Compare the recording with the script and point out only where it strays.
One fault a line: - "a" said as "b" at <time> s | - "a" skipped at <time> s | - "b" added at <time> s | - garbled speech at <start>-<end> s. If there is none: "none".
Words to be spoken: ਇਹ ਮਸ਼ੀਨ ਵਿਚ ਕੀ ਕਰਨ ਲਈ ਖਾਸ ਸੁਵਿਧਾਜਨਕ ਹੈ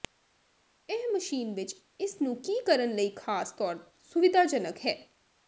- "ਇਸ ਨੂੰ" added at 2.0 s
- "ਤੌਰ" added at 3.5 s